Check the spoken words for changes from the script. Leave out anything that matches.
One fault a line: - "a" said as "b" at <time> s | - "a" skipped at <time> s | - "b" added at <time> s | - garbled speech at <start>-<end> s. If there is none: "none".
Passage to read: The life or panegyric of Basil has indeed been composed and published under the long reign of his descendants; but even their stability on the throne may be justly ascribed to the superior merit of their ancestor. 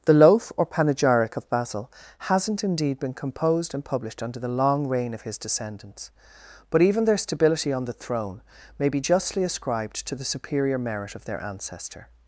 - "life" said as "loaf" at 0.1 s
- "has" said as "hasn't" at 2.2 s